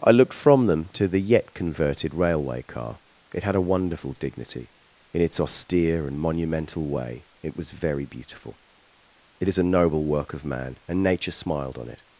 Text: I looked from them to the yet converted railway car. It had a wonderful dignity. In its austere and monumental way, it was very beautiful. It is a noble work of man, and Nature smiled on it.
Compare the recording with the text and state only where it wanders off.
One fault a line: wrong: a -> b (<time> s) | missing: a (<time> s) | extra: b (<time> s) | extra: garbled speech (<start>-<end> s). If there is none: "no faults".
no faults